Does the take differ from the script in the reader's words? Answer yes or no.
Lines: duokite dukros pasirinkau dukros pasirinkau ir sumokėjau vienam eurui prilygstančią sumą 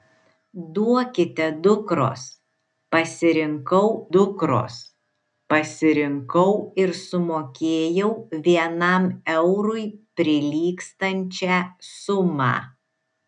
no